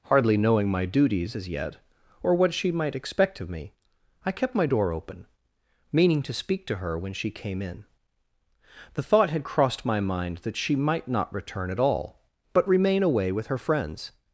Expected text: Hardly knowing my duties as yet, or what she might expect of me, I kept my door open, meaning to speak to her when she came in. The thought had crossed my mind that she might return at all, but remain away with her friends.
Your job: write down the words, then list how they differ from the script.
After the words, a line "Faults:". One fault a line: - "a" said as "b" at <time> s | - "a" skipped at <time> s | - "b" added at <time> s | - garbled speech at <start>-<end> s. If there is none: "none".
Hardly knowing my duties as yet, or what she might expect of me, I kept my door open, meaning to speak to her when she came in. The thought had crossed my mind that she might not return at all, but remain away with her friends.
Faults:
- "not" added at 11.1 s